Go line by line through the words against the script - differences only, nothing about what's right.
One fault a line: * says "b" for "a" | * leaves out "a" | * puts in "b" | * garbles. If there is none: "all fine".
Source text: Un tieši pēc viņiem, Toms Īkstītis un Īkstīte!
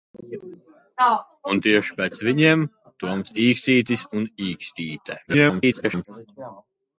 * garbles